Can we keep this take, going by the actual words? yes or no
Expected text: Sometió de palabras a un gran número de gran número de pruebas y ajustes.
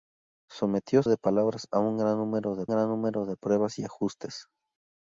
yes